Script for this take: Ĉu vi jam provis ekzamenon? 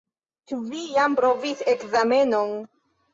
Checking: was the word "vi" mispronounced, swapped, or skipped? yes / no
no